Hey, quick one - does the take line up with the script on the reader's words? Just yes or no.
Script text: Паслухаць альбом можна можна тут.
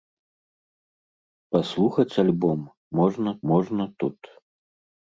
yes